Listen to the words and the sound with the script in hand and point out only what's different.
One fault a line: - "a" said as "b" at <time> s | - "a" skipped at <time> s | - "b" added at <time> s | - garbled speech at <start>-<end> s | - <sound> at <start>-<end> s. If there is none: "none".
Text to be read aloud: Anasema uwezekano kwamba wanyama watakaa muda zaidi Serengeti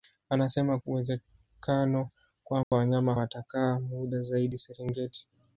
- dropout at 2.6-2.7 s